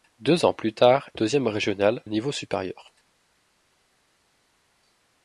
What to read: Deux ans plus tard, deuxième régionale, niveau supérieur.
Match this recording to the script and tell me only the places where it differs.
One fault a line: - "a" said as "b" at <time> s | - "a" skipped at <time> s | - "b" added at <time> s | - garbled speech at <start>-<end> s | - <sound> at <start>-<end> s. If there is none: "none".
none